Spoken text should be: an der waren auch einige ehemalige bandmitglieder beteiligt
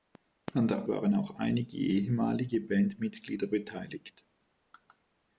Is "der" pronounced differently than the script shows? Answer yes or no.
no